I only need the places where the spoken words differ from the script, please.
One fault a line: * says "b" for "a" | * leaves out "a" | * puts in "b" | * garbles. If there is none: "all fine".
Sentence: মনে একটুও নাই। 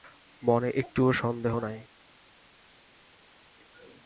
* puts in "সন্দেহ"